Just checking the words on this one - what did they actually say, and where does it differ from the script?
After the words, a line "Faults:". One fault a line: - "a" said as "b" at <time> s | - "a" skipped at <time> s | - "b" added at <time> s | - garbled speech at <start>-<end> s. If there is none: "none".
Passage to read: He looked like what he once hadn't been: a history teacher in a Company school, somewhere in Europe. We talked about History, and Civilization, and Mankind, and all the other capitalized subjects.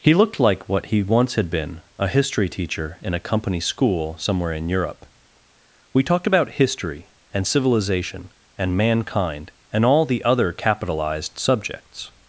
He looked like what he once had been: a history teacher in a Company school, somewhere in Europe. We talked about History, and Civilization, and Mankind, and all the other capitalized subjects.
Faults:
- "hadn't" said as "had" at 1.4 s